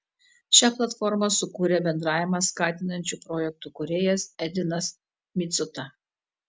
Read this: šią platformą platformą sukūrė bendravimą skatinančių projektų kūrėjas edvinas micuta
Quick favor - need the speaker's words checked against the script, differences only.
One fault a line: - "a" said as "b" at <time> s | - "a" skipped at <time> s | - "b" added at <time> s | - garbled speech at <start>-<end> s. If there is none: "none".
- "platformą" skipped at 1.3 s